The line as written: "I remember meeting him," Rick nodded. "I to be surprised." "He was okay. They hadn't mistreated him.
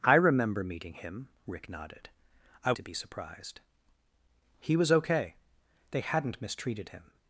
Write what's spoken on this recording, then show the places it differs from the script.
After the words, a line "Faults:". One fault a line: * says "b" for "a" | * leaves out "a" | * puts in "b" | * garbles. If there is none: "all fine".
"I remember meeting him," Rick nodded. "I to be surprised." "He was okay. They hadn't mistreated him.
Faults:
all fine